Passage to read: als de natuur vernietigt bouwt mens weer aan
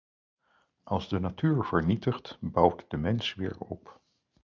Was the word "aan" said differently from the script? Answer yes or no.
yes